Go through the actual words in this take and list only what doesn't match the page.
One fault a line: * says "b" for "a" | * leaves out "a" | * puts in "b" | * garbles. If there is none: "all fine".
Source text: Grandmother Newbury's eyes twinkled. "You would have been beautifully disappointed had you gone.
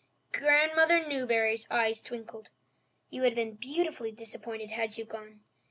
all fine